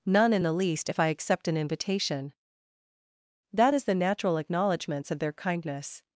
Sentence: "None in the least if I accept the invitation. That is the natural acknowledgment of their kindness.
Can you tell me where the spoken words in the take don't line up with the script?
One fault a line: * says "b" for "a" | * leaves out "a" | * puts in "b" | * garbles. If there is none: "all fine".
* says "an" for "the"
* says "acknowledgments" for "acknowledgment"